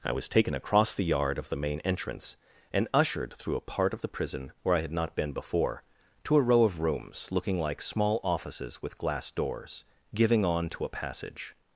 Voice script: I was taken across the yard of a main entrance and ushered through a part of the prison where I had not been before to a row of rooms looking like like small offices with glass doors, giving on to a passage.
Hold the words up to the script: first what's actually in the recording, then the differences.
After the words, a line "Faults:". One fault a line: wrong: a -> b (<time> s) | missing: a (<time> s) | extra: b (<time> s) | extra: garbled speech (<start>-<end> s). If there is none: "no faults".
I was taken across the yard of the main entrance and ushered through a part of the prison where I had not been before to a row of rooms looking like small offices with glass doors, giving on to a passage.
Faults:
wrong: a -> the (1.5 s)
missing: like (7.8 s)